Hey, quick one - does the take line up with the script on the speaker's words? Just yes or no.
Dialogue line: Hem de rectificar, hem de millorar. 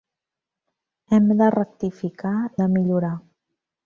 no